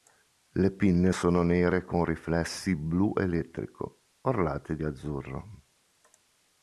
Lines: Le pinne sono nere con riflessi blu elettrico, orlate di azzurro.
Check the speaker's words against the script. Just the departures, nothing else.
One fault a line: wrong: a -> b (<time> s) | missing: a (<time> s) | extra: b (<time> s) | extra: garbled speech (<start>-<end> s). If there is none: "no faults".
no faults